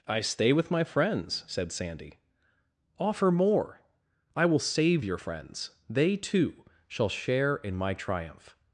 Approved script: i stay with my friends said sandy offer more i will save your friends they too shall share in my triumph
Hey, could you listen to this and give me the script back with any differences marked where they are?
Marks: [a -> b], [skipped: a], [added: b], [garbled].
i stay with my friends said sandy offer more i will save your friends they too shall share in my triumph